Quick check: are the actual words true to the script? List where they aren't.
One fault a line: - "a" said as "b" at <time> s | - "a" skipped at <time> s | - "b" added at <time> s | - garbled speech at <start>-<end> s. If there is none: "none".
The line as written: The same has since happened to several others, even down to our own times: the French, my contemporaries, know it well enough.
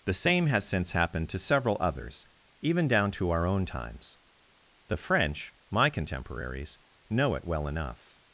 none